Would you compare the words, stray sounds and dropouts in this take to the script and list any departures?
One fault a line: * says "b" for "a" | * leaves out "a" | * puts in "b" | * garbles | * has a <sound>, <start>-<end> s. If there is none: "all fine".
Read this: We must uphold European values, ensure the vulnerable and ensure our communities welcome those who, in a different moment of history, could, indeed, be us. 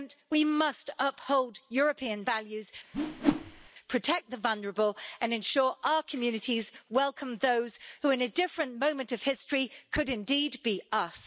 * has a whoosh, 2.9-3.7 s
* says "protect" for "ensure"